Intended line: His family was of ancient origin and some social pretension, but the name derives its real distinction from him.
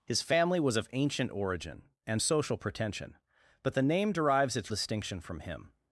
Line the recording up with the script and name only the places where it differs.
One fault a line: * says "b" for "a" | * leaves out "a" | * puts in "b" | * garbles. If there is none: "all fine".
* leaves out "some"
* leaves out "real"